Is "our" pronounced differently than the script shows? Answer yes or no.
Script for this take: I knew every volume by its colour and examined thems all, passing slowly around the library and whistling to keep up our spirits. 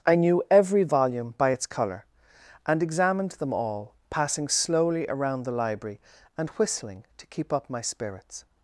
yes